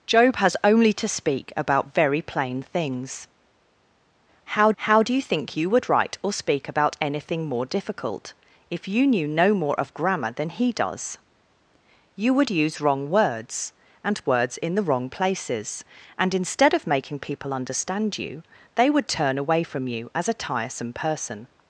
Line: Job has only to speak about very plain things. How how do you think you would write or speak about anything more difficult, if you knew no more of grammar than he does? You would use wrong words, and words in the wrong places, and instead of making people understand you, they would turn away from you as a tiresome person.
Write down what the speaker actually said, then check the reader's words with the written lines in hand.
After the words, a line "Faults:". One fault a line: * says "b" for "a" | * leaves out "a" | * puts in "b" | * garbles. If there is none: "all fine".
Job has only to speak about very plain things. How how do you think you would write or speak about anything more difficult, if you knew no more of grammar than he does? You would use wrong words, and words in the wrong places, and instead of making people understand you, they would turn away from you as a tiresome person.
Faults:
all fine